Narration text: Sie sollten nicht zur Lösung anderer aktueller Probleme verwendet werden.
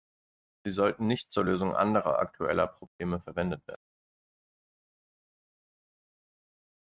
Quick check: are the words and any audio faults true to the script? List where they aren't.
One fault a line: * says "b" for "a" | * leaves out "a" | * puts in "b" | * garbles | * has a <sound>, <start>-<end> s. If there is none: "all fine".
all fine